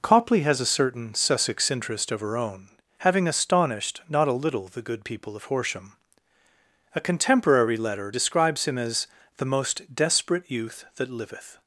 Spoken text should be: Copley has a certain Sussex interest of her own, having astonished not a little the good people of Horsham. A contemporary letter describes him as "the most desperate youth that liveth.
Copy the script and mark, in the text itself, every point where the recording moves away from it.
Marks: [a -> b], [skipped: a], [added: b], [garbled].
Copley has a certain Sussex interest of her own, having astonished not a little the good people of Horsham. A contemporary letter describes him as "the most desperate youth that liveth.